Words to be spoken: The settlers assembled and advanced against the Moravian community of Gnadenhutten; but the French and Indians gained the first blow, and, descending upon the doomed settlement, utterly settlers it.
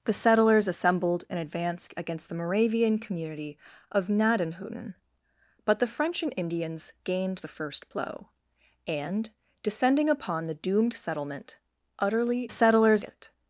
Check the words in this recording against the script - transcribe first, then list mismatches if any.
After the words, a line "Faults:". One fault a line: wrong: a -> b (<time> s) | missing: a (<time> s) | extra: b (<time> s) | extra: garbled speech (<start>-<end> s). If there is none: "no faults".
The settlers assembled and advanced against the Moravian community of Gnadenhutten; but the French and Indians gained the first blow, and, descending upon the doomed settlement, utterly settlers it.
Faults:
no faults